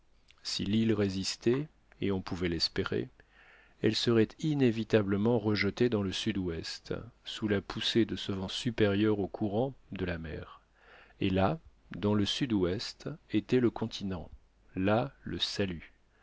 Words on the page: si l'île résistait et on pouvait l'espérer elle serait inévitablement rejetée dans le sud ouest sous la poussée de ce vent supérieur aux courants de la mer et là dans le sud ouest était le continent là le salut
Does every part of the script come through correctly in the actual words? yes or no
yes